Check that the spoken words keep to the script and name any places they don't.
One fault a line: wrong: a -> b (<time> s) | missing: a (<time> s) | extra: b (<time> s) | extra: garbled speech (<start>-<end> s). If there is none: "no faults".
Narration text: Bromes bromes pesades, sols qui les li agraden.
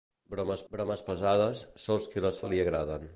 no faults